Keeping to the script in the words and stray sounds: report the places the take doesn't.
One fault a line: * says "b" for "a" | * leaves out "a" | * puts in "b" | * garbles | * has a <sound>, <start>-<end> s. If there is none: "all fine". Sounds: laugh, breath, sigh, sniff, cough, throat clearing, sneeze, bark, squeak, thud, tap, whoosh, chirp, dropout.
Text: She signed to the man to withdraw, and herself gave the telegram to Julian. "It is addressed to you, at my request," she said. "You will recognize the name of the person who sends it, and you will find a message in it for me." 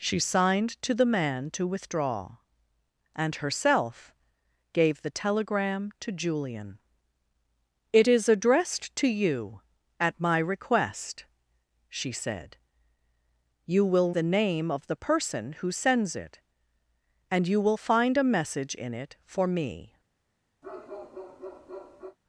* leaves out "recognize"
* has a bark, 20.6-22.2 s